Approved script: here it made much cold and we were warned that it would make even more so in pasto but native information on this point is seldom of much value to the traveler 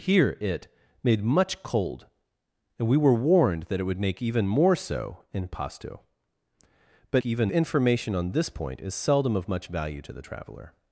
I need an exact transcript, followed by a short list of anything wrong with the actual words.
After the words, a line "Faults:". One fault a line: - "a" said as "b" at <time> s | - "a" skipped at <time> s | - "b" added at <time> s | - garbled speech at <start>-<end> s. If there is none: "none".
here it made much cold and we were warned that it would make even more so in pasto but even information on this point is seldom of much value to the traveler
Faults:
- "native" said as "even" at 7.2 s